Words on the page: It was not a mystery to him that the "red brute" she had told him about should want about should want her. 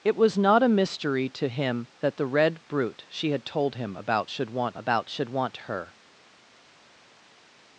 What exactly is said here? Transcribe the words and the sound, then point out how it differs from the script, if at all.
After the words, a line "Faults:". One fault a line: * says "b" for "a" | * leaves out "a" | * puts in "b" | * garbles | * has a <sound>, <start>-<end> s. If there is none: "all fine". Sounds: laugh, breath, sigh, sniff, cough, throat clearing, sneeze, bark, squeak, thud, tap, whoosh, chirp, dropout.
It was not a mystery to him that the "red brute" she had told him about should want about should want her.
Faults:
all fine